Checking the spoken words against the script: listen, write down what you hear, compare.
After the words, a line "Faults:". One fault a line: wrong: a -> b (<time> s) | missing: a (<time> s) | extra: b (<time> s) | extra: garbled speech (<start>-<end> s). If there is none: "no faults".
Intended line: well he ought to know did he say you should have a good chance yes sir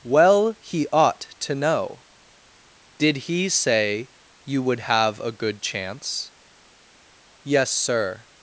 well he ought to know did he say you would have a good chance yes sir
Faults:
wrong: should -> would (4.6 s)